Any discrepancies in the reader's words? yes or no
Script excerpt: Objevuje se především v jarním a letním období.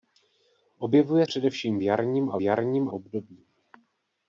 yes